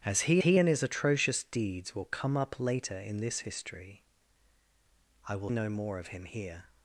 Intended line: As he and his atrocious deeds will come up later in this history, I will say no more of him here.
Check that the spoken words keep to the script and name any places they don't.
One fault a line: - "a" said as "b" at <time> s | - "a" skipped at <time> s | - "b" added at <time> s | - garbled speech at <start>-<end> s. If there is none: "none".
- "he" added at 0.4 s
- "say" skipped at 5.5 s